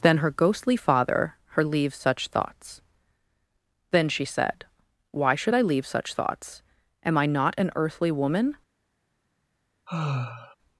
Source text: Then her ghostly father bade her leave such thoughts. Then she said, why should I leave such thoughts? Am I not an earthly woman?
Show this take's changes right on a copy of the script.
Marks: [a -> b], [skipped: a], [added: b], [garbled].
Then her ghostly father [skipped: bade] her leave such thoughts. Then she said, why should I leave such thoughts? Am I not an earthly woman?